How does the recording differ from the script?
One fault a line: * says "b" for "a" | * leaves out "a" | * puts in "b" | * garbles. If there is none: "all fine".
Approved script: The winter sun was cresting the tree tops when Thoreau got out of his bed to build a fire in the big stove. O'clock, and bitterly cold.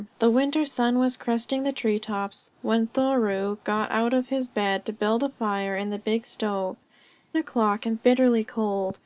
all fine